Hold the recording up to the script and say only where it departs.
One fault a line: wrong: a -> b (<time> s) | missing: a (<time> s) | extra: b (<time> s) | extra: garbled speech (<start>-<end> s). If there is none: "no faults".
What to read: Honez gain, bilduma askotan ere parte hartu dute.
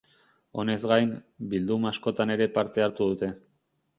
no faults